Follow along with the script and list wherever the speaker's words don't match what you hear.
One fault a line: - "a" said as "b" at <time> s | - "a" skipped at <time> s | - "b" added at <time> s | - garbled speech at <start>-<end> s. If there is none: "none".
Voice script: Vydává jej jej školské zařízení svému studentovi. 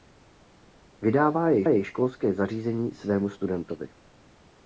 none